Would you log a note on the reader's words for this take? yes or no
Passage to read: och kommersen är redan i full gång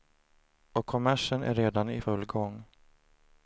no